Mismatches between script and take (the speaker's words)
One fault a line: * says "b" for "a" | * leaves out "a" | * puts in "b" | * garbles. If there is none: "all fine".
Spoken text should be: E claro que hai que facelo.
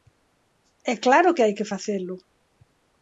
all fine